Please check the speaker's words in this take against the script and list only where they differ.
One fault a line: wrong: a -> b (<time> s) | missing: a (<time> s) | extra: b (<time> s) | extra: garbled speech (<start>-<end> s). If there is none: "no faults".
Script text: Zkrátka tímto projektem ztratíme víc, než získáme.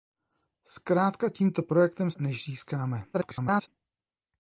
missing: ztratíme víc (2.1 s)
extra: garbled speech (3.1-3.7 s)